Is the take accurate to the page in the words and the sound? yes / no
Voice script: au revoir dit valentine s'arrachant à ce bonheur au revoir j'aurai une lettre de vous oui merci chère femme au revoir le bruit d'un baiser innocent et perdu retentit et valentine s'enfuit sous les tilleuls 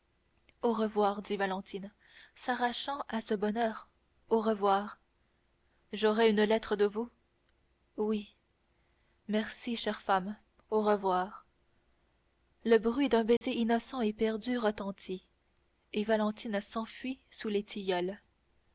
no